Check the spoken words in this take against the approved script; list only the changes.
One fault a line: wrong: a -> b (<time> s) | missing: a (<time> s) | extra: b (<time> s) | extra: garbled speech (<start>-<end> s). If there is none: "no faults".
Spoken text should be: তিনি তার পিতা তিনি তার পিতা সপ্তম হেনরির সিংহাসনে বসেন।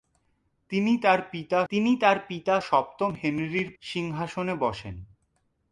no faults